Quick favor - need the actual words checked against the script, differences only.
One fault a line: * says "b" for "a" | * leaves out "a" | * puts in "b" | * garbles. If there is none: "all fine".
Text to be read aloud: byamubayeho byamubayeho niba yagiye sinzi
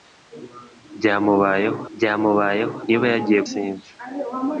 all fine